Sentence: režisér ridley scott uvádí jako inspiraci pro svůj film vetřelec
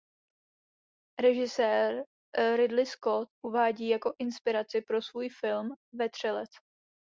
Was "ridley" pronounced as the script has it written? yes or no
yes